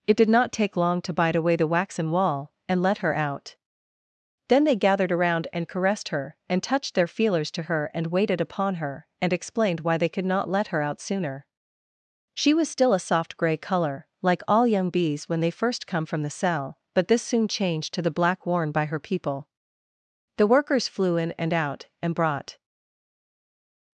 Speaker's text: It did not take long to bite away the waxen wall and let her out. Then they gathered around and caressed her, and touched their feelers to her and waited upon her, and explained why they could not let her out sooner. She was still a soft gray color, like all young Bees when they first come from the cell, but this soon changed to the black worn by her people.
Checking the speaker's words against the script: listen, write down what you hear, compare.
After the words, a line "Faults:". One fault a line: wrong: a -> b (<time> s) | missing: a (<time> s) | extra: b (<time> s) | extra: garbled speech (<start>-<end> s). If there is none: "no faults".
It did not take long to bite away the waxen wall and let her out. Then they gathered around and caressed her, and touched their feelers to her and waited upon her, and explained why they could not let her out sooner. She was still a soft gray color, like all young Bees when they first come from the cell, but this soon changed to the black worn by her people. The Workers flew in and out, and brought
Faults:
extra: The Workers flew in and out and brought (20.4 s)